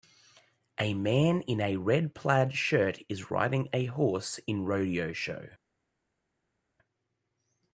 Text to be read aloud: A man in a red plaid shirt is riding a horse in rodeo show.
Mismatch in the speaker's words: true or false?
false